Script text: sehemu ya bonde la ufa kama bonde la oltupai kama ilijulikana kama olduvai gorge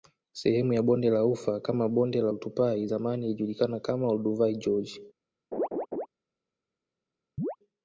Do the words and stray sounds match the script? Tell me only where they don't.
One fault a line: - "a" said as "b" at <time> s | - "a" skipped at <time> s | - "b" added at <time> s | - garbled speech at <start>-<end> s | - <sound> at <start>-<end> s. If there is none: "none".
- "kama" said as "zamani" at 2.8 s
- laugh at 5.5-6.1 s
- chirp at 7.4-7.6 s